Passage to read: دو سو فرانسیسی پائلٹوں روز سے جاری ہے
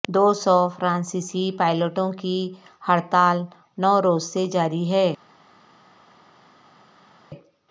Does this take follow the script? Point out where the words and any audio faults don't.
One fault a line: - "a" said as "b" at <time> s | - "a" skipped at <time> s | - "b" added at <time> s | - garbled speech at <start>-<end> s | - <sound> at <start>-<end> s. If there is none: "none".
- "کی ہڑتال نو" added at 2.1 s